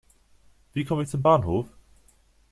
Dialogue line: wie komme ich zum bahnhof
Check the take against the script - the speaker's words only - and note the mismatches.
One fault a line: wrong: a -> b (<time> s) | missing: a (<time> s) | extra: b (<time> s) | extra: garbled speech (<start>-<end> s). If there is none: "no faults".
no faults